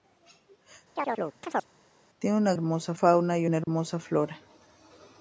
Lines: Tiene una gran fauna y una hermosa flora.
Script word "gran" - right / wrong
wrong